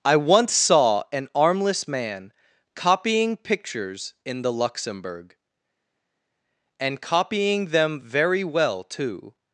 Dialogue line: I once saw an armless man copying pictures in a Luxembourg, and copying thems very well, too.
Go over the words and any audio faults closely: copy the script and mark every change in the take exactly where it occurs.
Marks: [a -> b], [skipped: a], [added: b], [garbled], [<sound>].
I once saw an armless man copying pictures in [a -> the] Luxembourg, and copying [thems -> them] very well, too.